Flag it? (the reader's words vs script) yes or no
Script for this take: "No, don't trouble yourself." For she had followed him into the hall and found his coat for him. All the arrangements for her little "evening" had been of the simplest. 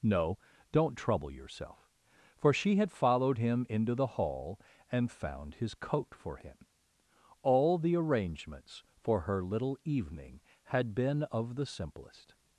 no